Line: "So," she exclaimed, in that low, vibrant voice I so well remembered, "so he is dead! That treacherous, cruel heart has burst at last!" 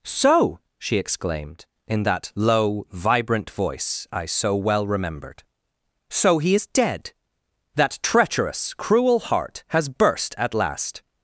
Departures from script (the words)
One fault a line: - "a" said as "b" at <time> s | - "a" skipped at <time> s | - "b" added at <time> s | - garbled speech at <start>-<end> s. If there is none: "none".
none